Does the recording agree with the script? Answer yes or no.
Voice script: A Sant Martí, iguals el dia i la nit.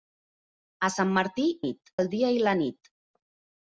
no